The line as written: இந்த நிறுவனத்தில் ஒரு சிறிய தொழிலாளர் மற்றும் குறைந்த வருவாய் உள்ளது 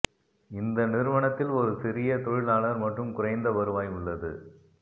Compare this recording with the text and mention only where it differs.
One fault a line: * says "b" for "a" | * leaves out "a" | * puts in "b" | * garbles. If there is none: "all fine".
all fine